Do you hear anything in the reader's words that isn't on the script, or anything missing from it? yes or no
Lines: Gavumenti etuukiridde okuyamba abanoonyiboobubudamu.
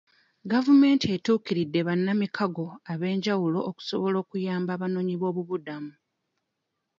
yes